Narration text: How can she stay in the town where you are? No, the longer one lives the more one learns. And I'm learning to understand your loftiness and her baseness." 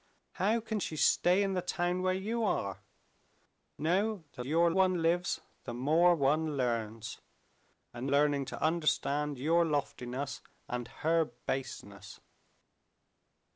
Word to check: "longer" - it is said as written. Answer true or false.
false